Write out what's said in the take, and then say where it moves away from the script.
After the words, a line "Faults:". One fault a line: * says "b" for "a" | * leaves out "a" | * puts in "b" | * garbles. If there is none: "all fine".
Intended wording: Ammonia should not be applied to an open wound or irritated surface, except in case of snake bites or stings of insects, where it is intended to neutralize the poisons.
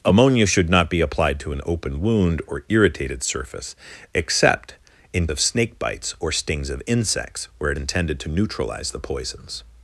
Ammonia should not be applied to an open wound or irritated surface, except in of snake bites or stings of insects, where it intended to neutralize the poisons.
Faults:
* leaves out "case"
* leaves out "is"